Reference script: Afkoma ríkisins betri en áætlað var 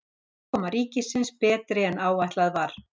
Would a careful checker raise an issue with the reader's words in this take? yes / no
no